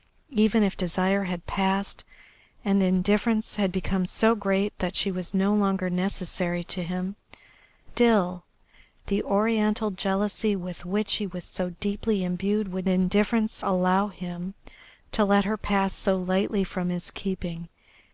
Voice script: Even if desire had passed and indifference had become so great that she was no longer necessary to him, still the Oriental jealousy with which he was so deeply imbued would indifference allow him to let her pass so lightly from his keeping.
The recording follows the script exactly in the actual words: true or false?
true